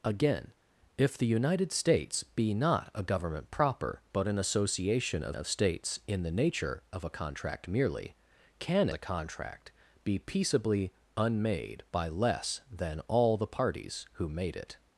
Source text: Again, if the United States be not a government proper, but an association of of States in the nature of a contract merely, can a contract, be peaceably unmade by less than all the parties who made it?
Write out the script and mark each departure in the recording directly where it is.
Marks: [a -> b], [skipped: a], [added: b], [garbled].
Again, if the United States be not a government proper, but an association of of States in the nature of a contract merely, can a contract, be peaceably unmade by less than all the parties who made it?